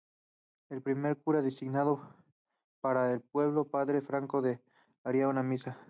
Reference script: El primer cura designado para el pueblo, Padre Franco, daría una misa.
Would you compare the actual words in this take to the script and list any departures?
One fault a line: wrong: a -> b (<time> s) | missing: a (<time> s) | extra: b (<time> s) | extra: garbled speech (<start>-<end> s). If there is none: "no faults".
no faults